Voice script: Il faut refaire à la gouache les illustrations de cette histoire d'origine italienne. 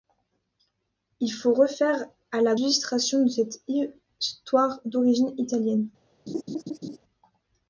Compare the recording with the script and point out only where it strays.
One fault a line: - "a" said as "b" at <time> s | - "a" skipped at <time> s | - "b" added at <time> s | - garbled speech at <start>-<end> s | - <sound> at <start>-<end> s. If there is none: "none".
- "gouache les" skipped at 2.5 s
- laugh at 6.3-7.0 s